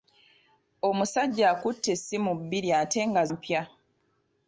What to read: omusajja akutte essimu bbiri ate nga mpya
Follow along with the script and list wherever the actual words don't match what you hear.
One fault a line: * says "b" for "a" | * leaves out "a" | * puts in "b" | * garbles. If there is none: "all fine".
all fine